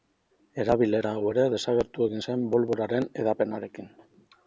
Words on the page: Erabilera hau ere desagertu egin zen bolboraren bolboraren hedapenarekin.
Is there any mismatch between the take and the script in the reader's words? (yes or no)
yes